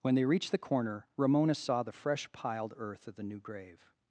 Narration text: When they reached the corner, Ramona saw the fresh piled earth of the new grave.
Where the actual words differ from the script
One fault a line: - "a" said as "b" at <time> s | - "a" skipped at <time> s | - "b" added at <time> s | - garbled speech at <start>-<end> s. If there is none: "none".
none